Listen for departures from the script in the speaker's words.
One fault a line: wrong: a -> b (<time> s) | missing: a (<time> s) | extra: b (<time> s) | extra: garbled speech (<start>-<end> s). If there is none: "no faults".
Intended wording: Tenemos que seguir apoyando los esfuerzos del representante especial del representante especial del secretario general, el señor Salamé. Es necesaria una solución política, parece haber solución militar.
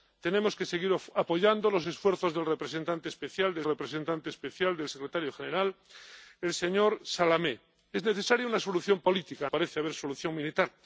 no faults